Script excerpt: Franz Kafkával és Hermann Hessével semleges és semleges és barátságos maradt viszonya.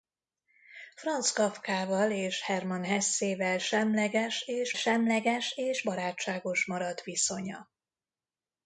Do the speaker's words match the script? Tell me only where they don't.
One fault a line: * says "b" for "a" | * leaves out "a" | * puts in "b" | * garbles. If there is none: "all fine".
all fine